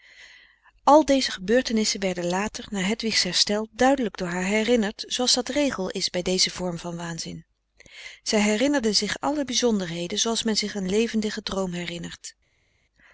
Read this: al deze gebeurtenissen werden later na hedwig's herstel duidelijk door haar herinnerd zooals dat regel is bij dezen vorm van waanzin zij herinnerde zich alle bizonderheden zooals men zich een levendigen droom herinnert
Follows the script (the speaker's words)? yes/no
yes